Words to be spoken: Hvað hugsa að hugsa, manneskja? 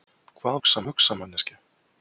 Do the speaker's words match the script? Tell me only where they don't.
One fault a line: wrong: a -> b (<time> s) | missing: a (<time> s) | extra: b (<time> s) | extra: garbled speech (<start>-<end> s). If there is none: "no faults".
no faults